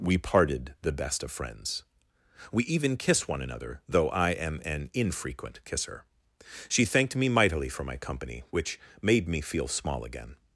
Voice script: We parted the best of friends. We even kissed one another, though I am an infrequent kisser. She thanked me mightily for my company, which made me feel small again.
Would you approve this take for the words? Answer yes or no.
no